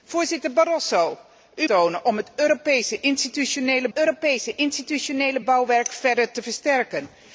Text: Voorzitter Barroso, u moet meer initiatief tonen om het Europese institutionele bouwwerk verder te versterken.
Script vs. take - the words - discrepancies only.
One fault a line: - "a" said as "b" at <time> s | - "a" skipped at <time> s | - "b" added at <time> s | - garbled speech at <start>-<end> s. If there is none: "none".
- "moet meer initiatief" skipped at 1.7 s
- "Europese institutionele" added at 3.9 s